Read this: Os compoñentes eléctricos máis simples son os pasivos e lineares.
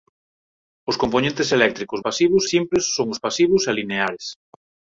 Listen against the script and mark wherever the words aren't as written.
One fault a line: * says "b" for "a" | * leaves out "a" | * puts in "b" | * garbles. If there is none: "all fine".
* says "pasivos" for "máis"